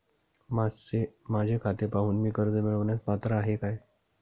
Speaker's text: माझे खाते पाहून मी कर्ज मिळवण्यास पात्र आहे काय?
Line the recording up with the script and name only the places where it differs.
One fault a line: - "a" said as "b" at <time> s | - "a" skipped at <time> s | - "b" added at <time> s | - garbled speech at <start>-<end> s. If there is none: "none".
none